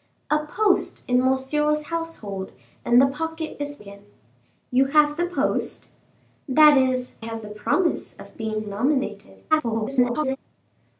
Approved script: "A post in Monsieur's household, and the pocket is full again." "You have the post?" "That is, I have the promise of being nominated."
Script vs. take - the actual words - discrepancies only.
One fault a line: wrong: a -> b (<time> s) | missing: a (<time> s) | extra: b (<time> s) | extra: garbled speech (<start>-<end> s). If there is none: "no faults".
missing: full (3.8 s)
missing: I (7.1 s)
extra: garbled speech (9.5-10.4 s)